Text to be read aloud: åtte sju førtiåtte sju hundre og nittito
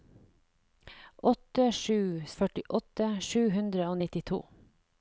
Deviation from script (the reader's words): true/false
false